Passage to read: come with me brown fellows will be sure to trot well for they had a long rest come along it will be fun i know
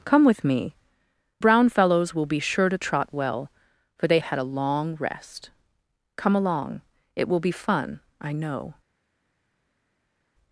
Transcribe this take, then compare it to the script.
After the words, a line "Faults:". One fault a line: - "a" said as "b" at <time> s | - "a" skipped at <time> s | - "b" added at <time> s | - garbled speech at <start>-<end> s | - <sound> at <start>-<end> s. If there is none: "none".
come with me brown fellows will be sure to trot well for they had a long rest come along it will be fun i know
Faults:
none